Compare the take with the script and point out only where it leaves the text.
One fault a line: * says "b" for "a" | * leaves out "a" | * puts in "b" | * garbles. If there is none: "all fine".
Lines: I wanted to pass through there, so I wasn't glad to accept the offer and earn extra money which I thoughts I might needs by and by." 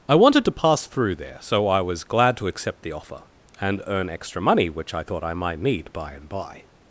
* says "was" for "wasn't"
* says "thought" for "thoughts"
* says "need" for "needs"